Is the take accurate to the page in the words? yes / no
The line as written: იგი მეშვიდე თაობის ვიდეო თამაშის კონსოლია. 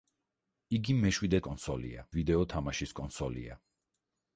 no